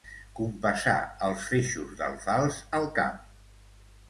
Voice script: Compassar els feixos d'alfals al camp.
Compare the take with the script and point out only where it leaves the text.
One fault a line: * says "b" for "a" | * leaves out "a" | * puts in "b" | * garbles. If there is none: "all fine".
all fine